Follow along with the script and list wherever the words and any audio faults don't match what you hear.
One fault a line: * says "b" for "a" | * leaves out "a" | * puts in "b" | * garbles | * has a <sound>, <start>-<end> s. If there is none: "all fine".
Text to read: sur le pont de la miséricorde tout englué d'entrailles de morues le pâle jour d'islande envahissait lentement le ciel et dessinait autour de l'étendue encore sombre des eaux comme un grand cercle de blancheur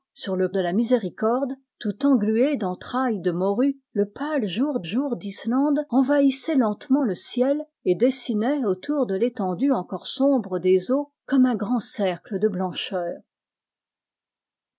* leaves out "pont"
* puts in "jour"